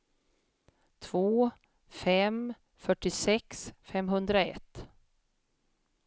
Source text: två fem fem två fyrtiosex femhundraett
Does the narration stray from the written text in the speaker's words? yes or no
yes